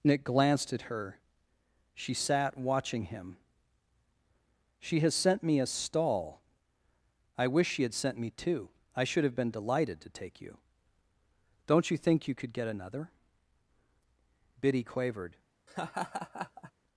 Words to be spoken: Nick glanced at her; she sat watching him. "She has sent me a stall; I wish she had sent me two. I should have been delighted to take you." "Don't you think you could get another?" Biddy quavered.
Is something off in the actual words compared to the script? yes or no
no